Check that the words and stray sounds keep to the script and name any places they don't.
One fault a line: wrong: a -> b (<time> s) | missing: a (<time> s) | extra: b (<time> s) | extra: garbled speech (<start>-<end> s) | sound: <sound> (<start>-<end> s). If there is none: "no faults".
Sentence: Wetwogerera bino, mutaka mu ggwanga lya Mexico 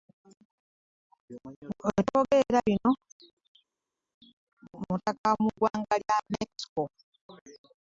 no faults